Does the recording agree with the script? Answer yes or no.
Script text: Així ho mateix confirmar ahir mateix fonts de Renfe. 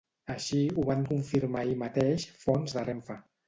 no